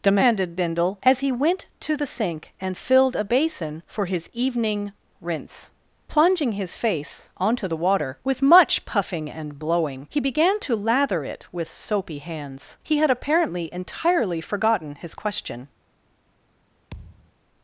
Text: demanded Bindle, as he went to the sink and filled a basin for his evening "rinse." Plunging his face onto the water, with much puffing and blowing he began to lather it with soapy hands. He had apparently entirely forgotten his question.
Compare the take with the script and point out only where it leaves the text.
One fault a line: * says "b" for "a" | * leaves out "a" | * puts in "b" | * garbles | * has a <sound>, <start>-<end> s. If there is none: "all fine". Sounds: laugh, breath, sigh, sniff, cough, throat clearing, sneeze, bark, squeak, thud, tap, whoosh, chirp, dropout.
* has a thud, 16.9-17.3 s